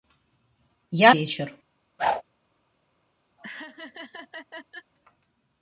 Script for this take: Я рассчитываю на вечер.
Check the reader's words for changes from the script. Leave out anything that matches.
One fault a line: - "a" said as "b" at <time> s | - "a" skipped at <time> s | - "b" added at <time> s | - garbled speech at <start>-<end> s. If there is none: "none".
- "рассчитываю на" skipped at 1.1 s